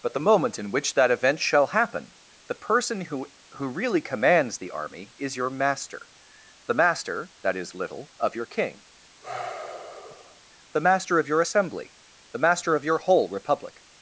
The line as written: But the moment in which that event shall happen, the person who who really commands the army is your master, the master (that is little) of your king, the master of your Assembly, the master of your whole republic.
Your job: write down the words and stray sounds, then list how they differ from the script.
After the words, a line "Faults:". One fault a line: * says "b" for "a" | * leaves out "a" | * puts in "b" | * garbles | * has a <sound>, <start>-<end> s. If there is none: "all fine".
But the moment in which that event shall happen, the person who who really commands the army is your master, the master (that is little) of your king, the master of your Assembly, the master of your whole republic.
Faults:
* has a sigh, 9.2-10.4 s